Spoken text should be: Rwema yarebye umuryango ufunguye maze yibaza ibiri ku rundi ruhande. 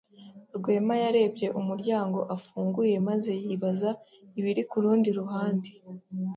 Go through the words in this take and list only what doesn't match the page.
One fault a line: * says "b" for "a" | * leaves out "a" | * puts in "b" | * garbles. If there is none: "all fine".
all fine